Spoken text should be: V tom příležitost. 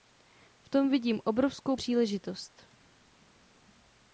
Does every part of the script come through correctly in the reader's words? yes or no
no